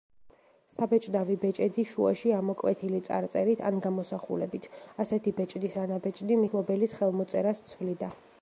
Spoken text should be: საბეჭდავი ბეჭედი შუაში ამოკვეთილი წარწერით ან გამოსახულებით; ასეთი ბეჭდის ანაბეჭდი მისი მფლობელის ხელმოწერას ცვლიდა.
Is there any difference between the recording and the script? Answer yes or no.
yes